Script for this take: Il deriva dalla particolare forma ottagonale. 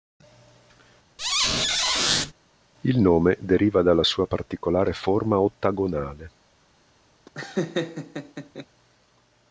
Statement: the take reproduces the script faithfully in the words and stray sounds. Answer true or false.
false